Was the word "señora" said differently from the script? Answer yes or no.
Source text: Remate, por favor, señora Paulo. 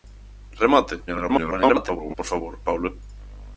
yes